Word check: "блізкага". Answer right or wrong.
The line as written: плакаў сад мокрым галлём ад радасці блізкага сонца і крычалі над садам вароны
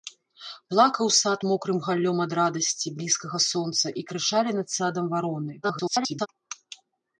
right